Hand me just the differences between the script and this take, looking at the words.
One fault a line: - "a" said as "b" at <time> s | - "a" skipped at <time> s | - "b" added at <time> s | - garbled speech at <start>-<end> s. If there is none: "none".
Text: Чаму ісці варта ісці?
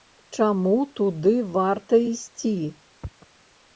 - "ісці" said as "туды" at 1.0 s